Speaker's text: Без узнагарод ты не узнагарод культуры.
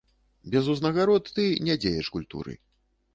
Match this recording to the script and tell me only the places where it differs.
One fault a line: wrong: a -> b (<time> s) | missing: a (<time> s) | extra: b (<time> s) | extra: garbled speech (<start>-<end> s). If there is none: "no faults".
wrong: узнагарод -> дзеяч (1.8 s)